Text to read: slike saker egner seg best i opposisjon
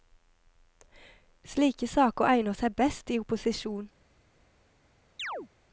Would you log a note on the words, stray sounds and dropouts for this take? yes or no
yes